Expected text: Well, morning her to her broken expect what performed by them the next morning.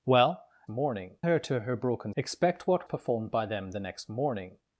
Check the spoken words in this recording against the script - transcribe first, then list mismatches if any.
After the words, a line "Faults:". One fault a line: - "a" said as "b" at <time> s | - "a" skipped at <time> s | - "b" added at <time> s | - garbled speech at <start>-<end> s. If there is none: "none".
Well, morning her to her broken expect what performed by them the next morning.
Faults:
none